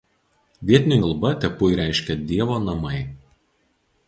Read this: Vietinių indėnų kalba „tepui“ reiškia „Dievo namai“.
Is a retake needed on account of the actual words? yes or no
yes